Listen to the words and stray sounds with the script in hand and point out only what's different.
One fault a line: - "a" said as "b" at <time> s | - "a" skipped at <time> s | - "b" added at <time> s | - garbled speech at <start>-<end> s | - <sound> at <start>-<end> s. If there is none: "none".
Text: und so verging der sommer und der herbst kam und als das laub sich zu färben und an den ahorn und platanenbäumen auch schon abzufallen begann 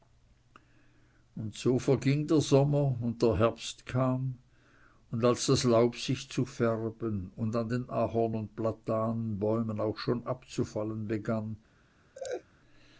- laugh at 12.1-12.4 s